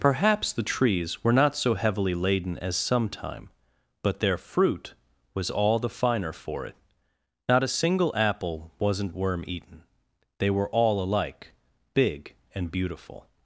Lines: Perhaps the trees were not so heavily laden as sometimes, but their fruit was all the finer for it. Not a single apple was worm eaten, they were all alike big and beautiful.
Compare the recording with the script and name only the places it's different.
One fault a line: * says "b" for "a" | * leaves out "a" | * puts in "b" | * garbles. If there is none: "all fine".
* says "sometime" for "sometimes"
* says "wasn't" for "was"